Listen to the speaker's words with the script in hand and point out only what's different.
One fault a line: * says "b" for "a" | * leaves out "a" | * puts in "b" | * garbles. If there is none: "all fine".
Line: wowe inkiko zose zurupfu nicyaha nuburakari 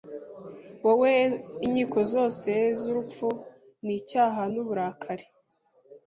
all fine